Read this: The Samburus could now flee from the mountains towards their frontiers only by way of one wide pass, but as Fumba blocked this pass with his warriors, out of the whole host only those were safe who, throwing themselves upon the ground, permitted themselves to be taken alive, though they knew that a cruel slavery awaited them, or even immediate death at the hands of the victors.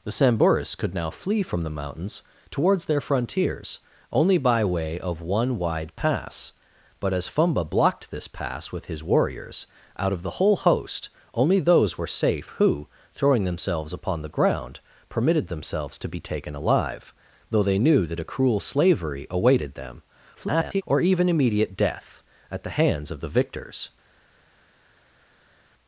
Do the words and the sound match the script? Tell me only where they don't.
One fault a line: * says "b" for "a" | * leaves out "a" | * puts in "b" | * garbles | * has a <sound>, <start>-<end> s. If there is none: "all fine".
* garbles